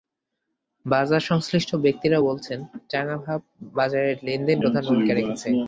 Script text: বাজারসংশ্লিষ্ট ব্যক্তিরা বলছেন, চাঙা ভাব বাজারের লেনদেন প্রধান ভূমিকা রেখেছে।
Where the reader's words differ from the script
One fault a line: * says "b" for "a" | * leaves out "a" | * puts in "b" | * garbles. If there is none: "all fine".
all fine